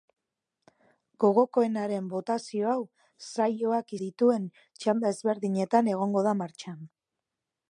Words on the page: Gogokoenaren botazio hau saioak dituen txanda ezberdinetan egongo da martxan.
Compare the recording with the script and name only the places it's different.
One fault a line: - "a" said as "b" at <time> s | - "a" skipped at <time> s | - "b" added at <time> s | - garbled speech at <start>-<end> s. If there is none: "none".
none